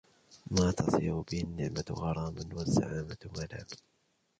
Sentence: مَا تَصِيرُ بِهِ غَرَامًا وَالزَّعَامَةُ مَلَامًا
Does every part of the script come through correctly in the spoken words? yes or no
no